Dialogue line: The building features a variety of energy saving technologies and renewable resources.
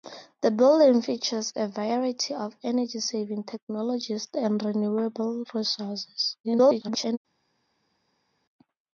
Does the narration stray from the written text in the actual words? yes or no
yes